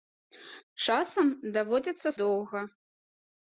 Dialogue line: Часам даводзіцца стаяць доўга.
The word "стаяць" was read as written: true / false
false